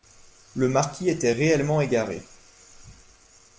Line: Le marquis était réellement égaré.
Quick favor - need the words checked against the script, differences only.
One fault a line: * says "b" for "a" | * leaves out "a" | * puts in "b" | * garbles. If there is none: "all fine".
all fine